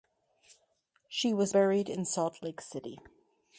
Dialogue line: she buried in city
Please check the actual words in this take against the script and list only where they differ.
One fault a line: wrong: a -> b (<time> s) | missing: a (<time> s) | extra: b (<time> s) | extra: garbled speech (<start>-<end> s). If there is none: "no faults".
extra: was (1.3 s)
extra: salt lake (2.0 s)